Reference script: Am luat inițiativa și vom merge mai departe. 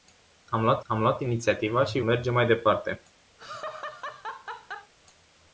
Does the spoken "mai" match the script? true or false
true